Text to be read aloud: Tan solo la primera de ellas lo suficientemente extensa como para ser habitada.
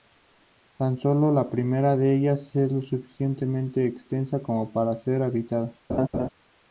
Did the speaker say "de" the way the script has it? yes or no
yes